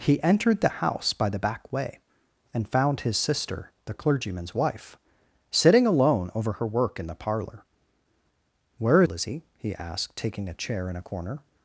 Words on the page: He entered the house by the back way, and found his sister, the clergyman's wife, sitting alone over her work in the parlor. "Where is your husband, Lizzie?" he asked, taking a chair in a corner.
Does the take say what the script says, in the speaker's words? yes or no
no